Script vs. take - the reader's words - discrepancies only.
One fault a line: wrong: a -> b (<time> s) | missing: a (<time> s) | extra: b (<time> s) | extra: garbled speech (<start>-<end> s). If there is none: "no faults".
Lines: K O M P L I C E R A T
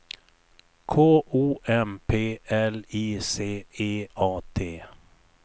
missing: R (4.1 s)